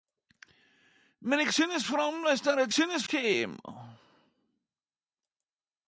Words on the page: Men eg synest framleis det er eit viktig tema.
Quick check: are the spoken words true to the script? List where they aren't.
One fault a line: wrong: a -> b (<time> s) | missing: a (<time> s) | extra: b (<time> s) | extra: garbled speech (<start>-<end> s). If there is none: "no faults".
wrong: viktig -> synest (2.7 s)